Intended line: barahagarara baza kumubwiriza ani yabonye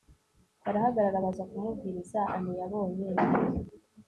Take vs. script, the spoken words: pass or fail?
pass